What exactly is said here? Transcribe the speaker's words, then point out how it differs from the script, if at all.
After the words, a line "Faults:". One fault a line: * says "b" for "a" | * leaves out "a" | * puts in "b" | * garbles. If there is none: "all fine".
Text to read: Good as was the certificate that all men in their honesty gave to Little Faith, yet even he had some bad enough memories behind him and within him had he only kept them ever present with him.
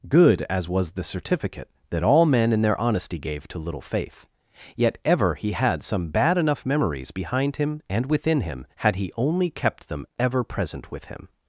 Good as was the certificate that all men in their honesty gave to Little Faith, yet ever he had some bad enough memories behind him and within him had he only kept them ever present with him.
Faults:
* says "ever" for "even"